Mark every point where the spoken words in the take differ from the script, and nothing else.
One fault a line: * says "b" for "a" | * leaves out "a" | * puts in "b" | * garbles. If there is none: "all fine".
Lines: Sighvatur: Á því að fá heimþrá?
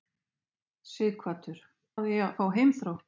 all fine